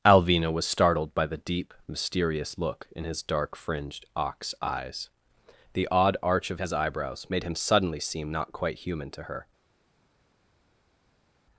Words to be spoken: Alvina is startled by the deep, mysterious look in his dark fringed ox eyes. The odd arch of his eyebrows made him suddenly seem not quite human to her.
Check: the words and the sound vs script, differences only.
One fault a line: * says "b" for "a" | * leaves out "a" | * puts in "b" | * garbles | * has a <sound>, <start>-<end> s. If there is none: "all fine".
* says "was" for "is"